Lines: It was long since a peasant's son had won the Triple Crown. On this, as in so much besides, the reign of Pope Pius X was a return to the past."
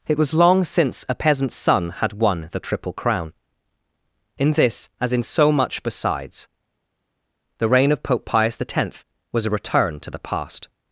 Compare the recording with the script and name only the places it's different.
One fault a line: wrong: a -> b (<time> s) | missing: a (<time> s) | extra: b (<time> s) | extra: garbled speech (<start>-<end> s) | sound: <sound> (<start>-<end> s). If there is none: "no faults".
wrong: On -> In (4.4 s)